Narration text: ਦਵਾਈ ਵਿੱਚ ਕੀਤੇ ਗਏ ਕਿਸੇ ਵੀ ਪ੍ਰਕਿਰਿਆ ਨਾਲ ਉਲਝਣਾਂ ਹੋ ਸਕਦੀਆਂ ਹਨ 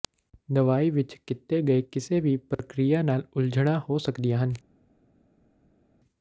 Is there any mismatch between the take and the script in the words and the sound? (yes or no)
no